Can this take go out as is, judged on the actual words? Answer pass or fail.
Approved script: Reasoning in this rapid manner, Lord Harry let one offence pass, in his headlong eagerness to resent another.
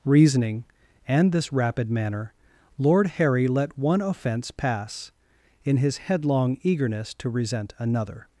fail